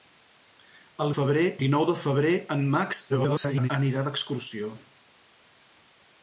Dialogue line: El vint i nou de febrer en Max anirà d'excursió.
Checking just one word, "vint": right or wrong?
wrong